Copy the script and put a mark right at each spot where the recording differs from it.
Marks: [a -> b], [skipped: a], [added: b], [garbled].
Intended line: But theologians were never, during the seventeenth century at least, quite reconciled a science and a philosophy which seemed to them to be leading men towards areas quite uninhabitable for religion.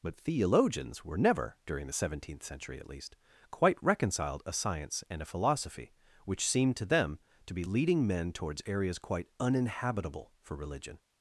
But theologians were never, during the seventeenth century at least, quite reconciled a science and a philosophy which seemed to them to be leading men towards areas quite uninhabitable for religion.